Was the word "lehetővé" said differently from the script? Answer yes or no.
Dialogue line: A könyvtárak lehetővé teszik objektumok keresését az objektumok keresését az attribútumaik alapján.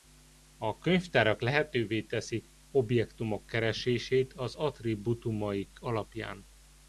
no